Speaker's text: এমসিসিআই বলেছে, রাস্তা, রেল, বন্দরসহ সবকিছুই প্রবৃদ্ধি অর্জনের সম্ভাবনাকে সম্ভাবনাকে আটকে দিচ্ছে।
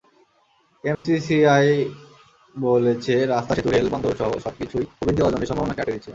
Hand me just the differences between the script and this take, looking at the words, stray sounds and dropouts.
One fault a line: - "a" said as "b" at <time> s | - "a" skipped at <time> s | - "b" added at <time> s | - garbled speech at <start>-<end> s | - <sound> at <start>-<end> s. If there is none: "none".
- dropout at 0.9-1.0 s
- "সেতু" added at 3.5 s
- "সম্ভাবনাকে" skipped at 5.8 s